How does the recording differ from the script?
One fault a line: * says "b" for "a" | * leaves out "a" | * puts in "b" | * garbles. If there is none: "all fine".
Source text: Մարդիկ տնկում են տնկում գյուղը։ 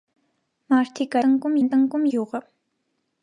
all fine